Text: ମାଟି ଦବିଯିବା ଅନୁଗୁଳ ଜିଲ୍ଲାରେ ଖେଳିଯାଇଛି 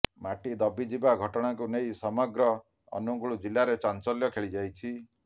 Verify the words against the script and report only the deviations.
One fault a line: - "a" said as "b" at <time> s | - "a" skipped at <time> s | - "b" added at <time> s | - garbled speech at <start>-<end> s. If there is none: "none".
- "ଘଟଣାକୁ ନେଇ ସମଗ୍ର" added at 1.2 s
- "ଚାଞ୍ଚଲ୍ୟ" added at 3.8 s